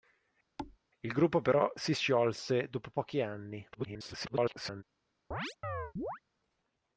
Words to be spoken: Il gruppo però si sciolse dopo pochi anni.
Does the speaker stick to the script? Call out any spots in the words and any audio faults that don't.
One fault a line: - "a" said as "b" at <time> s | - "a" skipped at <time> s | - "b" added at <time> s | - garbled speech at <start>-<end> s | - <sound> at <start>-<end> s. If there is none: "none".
- thud at 0.6-0.8 s
- garbled speech at 3.7-4.8 s
- chirp at 5.3-6.2 s